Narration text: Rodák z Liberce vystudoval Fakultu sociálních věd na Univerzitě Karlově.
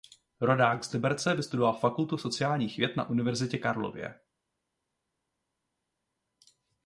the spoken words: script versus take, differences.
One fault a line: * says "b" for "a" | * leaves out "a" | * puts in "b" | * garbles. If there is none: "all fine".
all fine